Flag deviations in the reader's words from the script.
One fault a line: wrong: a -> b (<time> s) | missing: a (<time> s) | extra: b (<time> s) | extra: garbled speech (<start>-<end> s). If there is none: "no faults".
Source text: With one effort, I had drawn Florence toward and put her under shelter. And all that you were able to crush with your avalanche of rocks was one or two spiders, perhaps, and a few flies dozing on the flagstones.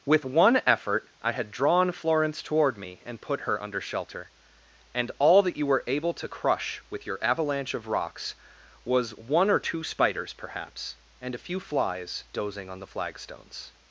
extra: me (2.8 s)